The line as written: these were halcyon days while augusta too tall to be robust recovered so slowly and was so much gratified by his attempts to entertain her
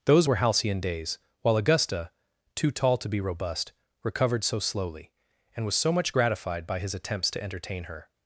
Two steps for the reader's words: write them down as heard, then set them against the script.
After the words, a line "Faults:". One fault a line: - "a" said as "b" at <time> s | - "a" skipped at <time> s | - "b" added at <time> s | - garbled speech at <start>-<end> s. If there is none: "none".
those were halcyon days while augusta too tall to be robust recovered so slowly and was so much gratified by his attempts to entertain her
Faults:
- "these" said as "those" at 0.1 s